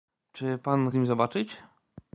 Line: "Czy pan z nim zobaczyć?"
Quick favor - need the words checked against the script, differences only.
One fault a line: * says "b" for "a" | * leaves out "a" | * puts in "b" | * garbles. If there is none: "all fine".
all fine